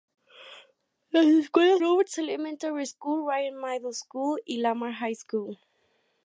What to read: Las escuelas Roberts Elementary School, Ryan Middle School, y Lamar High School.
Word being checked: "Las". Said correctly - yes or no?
yes